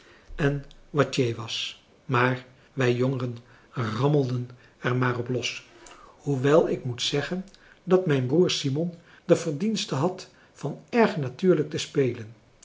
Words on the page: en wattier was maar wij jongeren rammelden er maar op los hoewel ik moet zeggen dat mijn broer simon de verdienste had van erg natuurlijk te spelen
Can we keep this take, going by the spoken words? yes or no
yes